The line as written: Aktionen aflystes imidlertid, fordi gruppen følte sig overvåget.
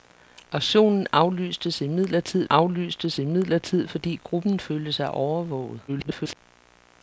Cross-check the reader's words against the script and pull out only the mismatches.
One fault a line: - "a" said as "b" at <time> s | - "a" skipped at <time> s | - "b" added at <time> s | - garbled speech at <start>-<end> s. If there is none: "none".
- "aflystes imidlertid" added at 2.5 s
- garbled speech at 5.9-6.4 s